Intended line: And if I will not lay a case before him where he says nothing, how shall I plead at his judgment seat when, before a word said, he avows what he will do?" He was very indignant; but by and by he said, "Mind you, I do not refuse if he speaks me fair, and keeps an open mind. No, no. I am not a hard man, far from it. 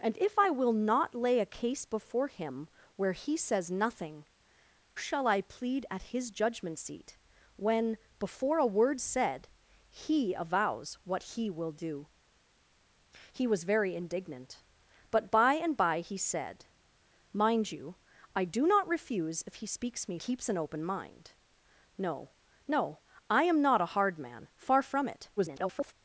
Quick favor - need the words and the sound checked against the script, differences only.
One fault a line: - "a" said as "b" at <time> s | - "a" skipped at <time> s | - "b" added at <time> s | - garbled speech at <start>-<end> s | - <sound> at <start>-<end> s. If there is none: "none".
- "how" skipped at 4.2 s
- "fair and" skipped at 20.2 s
- garbled speech at 25.4-25.9 s